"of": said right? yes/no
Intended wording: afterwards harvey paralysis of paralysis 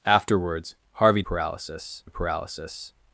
yes